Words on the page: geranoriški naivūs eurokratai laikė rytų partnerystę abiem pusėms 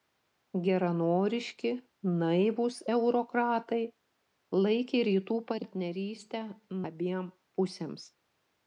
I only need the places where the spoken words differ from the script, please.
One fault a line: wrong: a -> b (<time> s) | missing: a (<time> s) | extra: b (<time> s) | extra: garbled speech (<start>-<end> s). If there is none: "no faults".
no faults